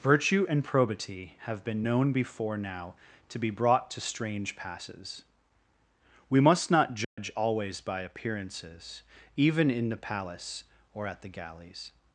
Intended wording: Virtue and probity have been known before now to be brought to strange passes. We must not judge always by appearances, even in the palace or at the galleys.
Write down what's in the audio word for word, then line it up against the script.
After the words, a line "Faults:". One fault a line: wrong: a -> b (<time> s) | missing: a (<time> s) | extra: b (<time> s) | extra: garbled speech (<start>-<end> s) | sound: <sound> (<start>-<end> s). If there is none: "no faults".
Virtue and probity have been known before now to be brought to strange passes. We must not judge always by appearances, even in the palace or at the galleys.
Faults:
sound: dropout (7.0-7.2 s)